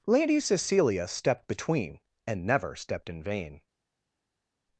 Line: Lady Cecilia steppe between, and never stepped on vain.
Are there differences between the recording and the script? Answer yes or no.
yes